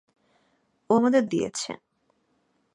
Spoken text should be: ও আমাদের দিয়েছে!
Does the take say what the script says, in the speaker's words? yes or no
yes